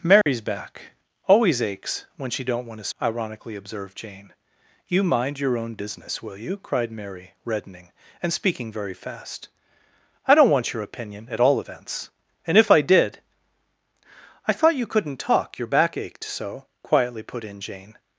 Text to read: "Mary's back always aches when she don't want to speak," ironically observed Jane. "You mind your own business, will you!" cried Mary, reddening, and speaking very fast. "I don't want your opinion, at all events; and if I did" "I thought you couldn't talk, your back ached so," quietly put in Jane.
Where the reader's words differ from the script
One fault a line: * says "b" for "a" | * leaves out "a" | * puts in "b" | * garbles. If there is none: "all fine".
* leaves out "speak"